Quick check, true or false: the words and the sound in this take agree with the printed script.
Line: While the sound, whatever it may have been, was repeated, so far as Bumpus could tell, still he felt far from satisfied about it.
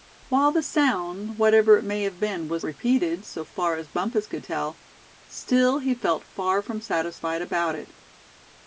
true